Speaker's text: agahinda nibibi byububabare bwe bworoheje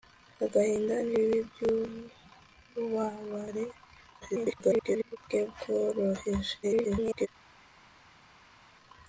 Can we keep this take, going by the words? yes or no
no